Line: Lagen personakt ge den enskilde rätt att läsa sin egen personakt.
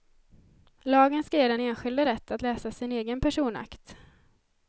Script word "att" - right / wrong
right